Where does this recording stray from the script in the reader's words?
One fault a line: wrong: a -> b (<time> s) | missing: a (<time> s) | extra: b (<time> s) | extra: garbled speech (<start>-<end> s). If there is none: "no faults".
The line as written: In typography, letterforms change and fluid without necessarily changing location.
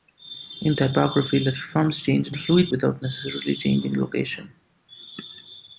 no faults